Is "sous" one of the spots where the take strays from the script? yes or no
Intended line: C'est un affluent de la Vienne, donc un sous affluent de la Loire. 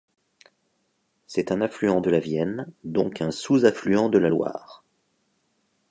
no